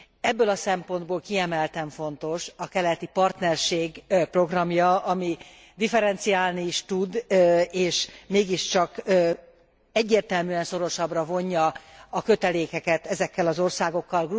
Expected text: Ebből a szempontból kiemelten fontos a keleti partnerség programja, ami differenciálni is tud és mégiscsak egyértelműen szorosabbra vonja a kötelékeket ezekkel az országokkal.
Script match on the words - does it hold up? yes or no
yes